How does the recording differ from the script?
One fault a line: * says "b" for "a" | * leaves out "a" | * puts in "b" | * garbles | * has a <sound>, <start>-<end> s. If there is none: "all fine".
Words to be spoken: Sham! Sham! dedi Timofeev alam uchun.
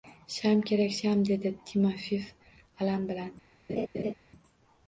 * puts in "kerak"
* says "bilan" for "uchun"
* has a laugh, 3.7-4.1 s